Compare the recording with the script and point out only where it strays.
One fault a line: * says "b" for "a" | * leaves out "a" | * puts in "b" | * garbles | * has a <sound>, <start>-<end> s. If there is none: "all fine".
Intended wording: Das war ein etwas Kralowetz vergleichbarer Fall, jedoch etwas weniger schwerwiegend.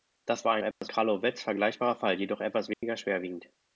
* has a dropout, 0.7-0.8 s
* has a dropout, 2.7-2.8 s